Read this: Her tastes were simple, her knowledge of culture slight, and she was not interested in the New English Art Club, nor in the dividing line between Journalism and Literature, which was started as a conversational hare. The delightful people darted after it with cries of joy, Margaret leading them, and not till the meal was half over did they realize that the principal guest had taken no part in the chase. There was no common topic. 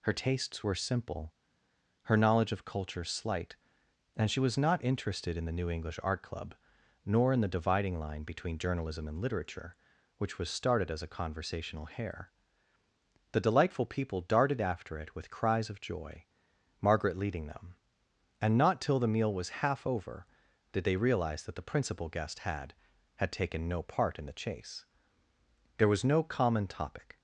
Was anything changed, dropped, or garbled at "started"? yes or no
no